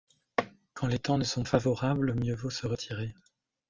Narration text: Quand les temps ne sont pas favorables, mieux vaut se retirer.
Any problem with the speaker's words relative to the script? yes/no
yes